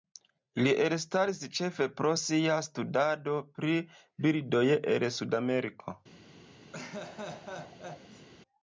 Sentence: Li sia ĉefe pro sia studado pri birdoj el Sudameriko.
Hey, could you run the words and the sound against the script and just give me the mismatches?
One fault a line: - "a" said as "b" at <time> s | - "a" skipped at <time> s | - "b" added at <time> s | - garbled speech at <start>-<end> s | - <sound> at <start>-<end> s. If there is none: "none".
- "sia" said as "elstaris" at 0.8 s
- laugh at 6.7-8.3 s